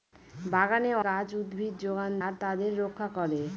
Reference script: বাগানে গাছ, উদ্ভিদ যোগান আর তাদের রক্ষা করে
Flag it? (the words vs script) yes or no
no